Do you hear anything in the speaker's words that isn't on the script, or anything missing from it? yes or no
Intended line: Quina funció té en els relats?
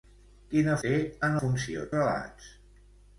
yes